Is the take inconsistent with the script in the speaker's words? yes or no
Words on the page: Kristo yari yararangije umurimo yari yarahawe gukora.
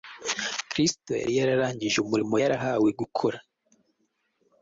yes